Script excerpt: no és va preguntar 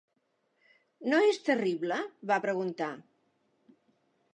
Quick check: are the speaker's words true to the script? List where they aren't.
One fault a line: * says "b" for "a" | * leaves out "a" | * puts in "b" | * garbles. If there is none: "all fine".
* puts in "terrible"